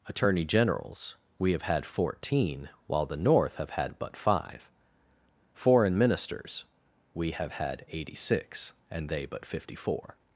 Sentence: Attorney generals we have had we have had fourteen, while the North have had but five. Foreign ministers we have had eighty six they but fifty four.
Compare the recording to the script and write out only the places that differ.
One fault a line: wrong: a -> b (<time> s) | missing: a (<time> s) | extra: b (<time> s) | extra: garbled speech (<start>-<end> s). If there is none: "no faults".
missing: we have had (1.9 s)
extra: and (8.9 s)